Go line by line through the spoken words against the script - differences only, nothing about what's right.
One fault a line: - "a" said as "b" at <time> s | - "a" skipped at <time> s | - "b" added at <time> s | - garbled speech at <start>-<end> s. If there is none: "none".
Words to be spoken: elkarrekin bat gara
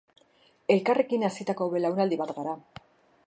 - "hazitako belaunaldi" added at 1.3 s